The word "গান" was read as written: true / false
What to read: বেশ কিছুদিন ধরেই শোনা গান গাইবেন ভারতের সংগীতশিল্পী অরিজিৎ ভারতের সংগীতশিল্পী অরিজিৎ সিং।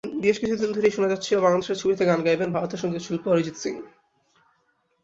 false